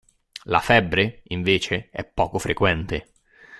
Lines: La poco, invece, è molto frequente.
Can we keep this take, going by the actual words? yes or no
no